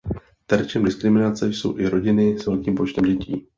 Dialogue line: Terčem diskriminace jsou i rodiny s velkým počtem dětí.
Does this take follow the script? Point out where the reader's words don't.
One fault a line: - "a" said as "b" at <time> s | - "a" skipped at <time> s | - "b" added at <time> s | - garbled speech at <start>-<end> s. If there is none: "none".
none